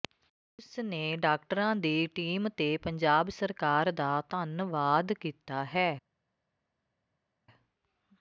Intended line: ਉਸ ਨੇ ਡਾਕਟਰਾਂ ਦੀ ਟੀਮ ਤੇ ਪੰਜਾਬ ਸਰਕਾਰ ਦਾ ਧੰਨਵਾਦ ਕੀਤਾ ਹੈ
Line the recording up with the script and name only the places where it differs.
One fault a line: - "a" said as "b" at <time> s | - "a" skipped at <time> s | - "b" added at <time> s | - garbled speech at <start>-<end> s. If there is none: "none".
none